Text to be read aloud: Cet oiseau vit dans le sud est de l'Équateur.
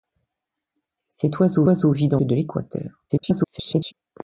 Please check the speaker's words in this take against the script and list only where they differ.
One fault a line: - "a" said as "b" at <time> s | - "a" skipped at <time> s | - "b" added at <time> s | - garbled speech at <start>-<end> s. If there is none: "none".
- "oiseau" added at 1.6 s
- "le sud est" skipped at 2.2 s
- garbled speech at 3.1-3.9 s